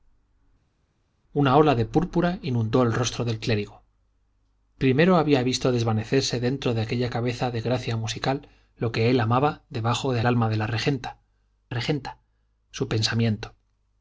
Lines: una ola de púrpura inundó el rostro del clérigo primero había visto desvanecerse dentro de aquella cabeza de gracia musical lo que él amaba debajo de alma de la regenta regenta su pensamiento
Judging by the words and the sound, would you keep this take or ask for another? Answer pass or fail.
pass